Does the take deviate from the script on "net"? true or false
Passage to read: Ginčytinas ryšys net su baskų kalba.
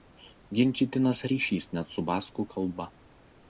false